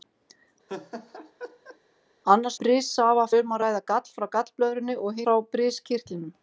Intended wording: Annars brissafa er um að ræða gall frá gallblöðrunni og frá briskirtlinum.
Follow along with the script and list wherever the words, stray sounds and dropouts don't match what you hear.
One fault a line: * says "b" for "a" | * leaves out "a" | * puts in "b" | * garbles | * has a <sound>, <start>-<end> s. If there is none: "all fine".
* has a laugh, 0.7-1.8 s